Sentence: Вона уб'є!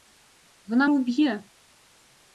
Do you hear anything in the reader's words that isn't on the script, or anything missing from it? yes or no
no